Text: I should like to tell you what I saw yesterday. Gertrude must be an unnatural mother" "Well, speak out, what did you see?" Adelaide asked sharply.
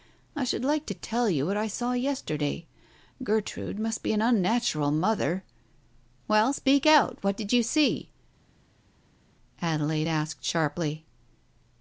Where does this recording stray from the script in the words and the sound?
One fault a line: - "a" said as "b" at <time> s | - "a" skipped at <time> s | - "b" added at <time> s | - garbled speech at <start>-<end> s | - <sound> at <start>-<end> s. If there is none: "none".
none